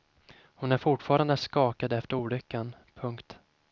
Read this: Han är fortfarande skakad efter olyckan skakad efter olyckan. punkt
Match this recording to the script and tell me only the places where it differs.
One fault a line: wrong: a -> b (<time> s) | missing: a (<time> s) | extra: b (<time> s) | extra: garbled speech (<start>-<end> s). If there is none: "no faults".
wrong: Han -> Hon (0.4 s)
missing: skakad efter olyckan (2.7 s)